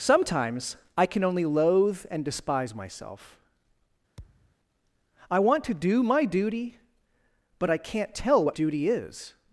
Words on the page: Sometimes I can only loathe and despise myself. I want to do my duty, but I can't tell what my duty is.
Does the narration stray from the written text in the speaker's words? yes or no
yes